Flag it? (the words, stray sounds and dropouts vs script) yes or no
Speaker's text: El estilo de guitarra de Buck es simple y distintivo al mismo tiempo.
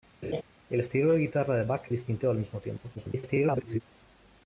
yes